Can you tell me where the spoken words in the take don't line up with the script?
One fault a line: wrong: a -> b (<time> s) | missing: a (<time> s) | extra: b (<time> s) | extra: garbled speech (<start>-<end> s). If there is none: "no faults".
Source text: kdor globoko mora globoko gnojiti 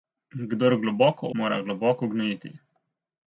no faults